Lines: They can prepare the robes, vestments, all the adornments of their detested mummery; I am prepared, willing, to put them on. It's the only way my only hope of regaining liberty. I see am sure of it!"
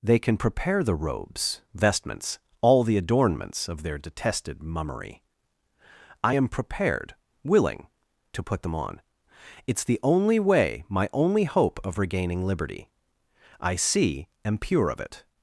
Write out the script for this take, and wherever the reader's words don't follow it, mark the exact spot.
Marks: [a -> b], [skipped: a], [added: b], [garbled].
They can prepare the robes, vestments, all the adornments of their detested mummery; I am prepared, willing, to put them on. It's the only way my only hope of regaining liberty. I see am [sure -> pure] of it!"